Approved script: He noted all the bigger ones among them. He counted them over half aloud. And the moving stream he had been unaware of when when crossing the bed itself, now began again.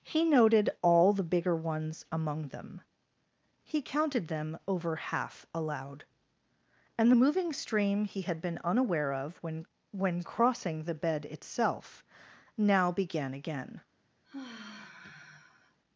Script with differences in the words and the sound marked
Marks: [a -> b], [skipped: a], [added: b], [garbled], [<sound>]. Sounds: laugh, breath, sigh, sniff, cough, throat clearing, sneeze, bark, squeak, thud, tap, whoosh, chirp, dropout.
He noted all the bigger ones among them. He counted them over half aloud. And the moving stream he had been unaware of when when crossing the bed itself, now began again. [sigh]